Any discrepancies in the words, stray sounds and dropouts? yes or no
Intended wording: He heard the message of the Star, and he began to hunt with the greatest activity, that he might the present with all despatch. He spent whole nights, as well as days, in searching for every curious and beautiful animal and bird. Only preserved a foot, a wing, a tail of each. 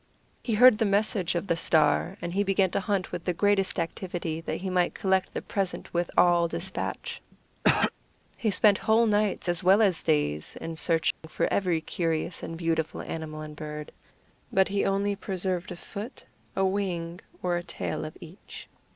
yes